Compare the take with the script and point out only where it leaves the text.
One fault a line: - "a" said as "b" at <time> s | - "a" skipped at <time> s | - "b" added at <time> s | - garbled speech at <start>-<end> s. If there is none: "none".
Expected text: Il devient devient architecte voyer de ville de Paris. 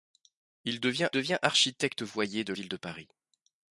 none